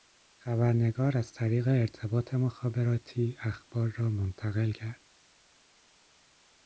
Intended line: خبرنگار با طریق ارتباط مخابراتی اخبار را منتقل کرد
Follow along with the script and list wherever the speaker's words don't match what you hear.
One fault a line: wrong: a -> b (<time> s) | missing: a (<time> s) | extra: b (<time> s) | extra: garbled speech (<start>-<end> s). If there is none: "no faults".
wrong: با -> از (1.2 s)